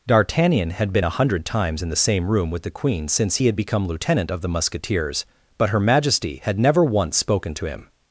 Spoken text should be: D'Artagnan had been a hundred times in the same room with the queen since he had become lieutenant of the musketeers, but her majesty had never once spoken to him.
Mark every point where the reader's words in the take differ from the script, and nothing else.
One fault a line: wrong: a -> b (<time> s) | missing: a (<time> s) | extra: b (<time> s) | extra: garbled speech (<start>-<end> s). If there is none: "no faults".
no faults